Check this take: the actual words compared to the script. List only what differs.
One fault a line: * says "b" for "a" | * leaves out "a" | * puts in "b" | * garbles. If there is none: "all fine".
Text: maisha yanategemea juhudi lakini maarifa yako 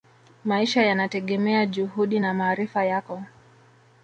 * says "na" for "lakini"